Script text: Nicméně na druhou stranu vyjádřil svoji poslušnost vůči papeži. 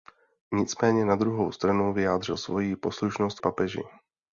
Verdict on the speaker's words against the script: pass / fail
fail